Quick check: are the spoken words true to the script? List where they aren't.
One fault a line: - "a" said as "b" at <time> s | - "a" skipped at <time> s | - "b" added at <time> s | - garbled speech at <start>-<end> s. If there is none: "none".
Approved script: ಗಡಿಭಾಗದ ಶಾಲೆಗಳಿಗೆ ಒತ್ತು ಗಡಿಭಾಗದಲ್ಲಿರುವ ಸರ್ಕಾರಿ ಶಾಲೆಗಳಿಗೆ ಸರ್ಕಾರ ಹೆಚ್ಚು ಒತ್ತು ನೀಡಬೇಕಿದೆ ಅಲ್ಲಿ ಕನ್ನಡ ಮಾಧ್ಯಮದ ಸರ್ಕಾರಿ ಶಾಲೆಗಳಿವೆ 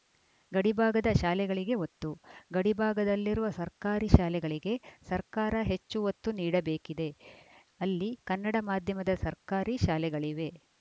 none